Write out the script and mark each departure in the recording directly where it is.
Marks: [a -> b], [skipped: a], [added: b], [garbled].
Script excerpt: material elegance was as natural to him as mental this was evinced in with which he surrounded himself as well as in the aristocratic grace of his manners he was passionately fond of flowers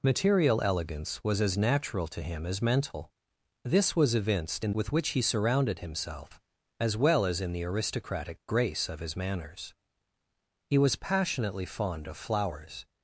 material elegance was as natural to him as mental this was evinced in with which he surrounded himself as well as in the aristocratic grace of his manners he was passionately fond of flowers